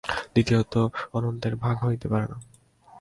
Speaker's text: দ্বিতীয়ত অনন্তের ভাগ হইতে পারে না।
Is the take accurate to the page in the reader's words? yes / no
yes